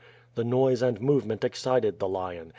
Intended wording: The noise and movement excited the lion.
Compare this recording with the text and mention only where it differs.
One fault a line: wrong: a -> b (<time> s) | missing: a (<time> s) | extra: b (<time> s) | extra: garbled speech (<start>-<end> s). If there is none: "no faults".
no faults